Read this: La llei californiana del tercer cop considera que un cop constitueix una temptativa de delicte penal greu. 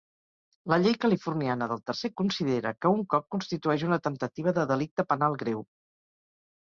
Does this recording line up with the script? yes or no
no